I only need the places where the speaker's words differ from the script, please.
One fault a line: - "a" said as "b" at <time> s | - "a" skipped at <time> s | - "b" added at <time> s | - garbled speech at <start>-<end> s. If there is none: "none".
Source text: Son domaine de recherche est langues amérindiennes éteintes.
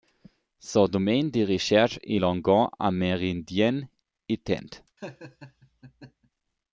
none